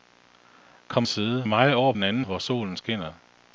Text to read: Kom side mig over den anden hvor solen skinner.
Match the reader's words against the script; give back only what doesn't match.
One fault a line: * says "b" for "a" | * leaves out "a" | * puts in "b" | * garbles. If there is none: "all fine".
all fine